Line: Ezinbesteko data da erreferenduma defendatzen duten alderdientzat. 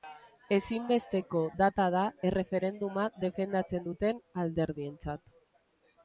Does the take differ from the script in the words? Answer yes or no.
no